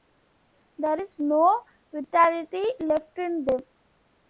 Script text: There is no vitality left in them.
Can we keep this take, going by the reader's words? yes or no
yes